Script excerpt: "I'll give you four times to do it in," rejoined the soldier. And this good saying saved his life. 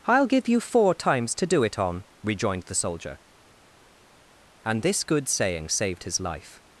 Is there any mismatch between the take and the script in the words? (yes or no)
yes